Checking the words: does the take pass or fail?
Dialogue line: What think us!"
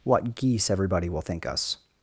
fail